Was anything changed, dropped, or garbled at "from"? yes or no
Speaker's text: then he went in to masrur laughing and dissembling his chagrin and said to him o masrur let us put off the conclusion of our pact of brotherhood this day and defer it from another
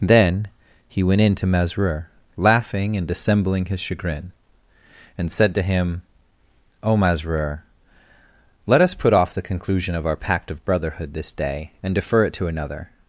yes